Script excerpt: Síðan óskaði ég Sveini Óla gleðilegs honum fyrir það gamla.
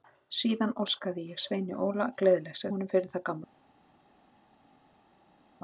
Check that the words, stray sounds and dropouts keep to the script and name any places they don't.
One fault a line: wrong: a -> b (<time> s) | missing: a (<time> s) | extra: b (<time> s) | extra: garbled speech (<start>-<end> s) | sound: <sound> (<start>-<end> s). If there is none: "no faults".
no faults